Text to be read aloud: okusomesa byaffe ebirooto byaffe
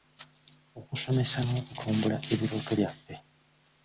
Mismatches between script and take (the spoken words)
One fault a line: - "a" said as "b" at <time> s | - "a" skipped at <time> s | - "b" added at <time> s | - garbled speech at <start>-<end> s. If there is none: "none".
- "byaffe" said as "n'okutumbula" at 1.4 s